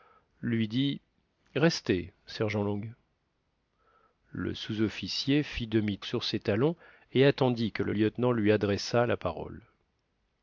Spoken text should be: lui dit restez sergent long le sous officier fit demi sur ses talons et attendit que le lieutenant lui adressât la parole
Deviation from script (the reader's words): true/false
false